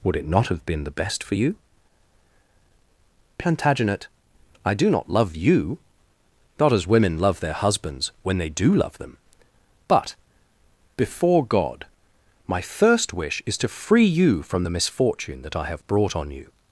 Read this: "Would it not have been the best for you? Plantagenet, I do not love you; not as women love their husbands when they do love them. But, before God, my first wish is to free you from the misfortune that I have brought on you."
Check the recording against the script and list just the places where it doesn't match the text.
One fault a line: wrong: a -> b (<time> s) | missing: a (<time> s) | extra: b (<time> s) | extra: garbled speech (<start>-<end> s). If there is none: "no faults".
no faults